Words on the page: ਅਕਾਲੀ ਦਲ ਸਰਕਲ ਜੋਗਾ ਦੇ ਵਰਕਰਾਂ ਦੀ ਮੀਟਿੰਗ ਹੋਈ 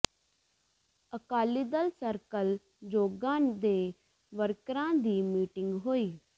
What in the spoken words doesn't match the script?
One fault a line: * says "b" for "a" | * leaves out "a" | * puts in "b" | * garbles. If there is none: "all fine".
all fine